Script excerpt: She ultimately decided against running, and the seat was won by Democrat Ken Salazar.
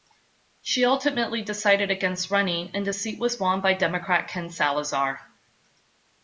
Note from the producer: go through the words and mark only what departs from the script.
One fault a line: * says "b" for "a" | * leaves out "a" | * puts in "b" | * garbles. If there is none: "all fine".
all fine